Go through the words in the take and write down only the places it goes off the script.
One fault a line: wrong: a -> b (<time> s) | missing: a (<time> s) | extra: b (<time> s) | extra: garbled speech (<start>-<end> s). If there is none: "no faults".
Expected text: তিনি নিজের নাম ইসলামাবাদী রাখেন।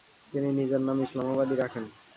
no faults